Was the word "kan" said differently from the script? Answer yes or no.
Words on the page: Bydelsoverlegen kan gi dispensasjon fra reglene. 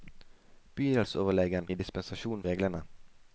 yes